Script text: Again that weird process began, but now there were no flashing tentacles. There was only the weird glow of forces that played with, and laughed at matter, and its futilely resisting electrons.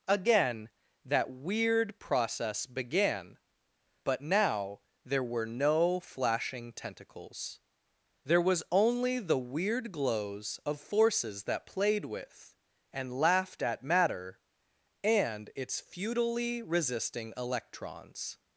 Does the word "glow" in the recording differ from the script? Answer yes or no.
yes